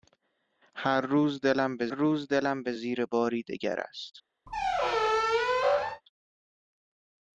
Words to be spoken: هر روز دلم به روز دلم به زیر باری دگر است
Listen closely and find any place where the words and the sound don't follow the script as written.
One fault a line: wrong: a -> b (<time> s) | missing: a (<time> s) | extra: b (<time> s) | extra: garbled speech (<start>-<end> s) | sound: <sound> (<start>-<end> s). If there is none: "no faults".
sound: squeak (4.5-6.0 s)